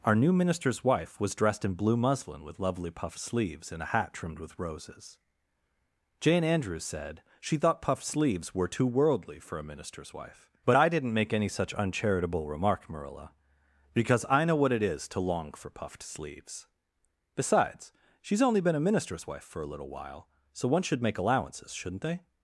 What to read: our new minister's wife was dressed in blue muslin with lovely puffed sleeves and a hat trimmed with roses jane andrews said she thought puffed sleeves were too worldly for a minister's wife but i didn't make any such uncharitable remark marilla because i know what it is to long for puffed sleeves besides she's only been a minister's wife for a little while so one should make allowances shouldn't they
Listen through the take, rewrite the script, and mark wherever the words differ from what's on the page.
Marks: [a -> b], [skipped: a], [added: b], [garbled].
our new minister's wife was dressed in blue muslin with lovely puffed sleeves and a hat trimmed with roses jane andrews said she thought puffed sleeves were too worldly for a minister's wife but i didn't make any such uncharitable remark marilla because i know what it is to long for puffed sleeves besides she's only been a minister's wife for a little while so one should make allowances shouldn't they